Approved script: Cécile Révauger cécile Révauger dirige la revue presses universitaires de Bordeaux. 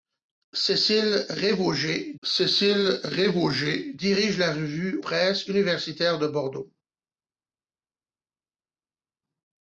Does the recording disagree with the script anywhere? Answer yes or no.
no